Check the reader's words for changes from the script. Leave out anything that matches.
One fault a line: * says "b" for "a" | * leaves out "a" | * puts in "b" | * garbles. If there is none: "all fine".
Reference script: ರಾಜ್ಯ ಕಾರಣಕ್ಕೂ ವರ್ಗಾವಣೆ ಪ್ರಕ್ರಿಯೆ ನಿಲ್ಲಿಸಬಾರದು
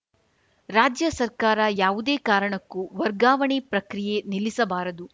* puts in "ಸರ್ಕಾರ ಯಾವುದೇ"